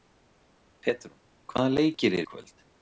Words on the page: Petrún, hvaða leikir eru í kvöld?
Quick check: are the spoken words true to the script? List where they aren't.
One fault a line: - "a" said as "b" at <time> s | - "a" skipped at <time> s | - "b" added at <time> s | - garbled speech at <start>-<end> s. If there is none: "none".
- "eru" skipped at 2.2 s